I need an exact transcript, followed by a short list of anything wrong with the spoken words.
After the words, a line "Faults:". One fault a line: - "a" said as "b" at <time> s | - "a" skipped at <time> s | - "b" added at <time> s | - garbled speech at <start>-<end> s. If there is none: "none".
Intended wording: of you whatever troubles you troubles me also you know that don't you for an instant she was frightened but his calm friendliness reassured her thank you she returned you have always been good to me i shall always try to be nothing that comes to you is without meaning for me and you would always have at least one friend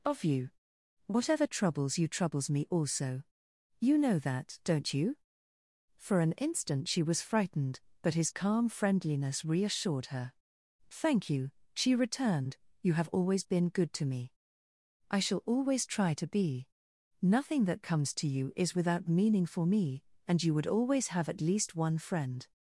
of you whatever troubles you troubles me also you know that don't you for an instant she was frightened but his calm friendliness reassured her thank you she returned you have always been good to me i shall always try to be nothing that comes to you is without meaning for me and you would always have at least one friend
Faults:
none